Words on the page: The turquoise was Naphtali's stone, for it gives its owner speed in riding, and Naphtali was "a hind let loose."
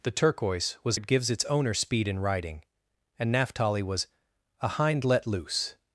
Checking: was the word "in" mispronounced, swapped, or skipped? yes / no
no